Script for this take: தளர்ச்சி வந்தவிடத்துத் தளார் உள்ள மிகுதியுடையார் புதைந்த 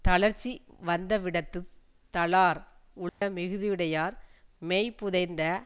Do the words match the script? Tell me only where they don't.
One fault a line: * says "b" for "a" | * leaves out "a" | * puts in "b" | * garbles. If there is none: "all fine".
* puts in "மெய்"